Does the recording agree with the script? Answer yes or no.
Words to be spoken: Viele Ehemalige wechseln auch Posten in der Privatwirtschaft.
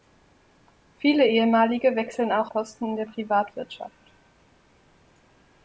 yes